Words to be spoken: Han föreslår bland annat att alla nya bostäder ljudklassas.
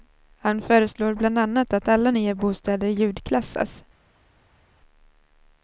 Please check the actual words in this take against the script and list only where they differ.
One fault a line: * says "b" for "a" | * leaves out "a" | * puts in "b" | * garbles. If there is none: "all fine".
all fine